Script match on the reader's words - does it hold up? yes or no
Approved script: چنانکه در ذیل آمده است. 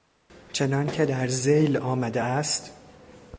yes